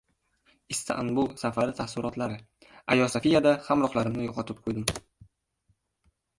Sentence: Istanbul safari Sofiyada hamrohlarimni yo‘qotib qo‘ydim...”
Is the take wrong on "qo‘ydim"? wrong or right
right